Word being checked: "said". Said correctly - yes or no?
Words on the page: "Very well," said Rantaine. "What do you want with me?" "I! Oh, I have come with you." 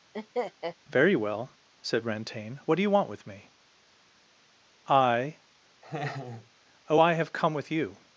yes